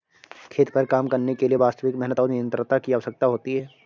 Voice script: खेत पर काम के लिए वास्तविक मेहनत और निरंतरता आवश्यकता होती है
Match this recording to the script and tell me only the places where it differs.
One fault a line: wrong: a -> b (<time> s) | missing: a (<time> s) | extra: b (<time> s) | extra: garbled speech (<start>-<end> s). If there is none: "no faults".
extra: करने (1.1 s)
extra: की (2.8 s)